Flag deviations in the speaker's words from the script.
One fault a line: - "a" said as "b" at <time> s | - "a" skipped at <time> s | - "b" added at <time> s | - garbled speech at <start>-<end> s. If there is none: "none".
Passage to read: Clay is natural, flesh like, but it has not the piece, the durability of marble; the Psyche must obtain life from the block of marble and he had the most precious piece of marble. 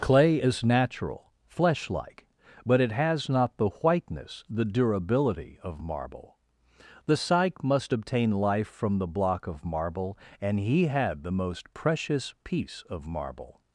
- "piece" said as "whiteness" at 3.7 s